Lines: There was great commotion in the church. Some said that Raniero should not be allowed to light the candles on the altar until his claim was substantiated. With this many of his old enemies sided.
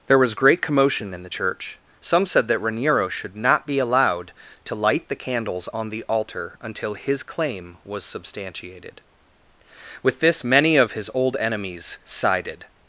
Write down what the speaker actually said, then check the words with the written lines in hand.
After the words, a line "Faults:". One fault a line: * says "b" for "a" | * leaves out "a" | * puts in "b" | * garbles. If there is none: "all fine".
There was great commotion in the church. Some said that Raniero should not be allowed to light the candles on the altar until his claim was substantiated. With this many of his old enemies sided.
Faults:
all fine